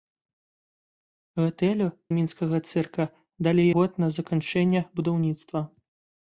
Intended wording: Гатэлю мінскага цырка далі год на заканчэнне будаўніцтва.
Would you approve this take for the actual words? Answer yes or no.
yes